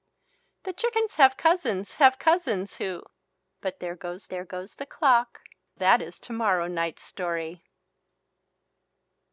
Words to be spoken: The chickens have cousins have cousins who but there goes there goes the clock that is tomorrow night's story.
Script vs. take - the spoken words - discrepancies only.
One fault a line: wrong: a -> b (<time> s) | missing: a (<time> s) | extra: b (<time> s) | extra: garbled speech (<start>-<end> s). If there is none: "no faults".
no faults